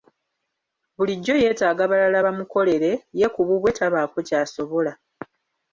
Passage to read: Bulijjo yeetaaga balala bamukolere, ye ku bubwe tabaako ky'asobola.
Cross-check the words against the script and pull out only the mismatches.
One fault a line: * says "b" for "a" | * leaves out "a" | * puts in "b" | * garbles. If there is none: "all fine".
all fine